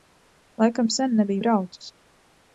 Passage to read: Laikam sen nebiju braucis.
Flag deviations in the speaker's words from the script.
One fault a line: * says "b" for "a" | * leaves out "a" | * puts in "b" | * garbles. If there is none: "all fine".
all fine